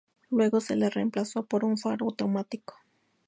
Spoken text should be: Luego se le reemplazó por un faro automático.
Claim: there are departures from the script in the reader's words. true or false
false